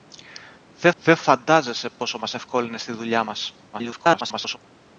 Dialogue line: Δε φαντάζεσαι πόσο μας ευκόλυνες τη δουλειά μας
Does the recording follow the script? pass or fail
fail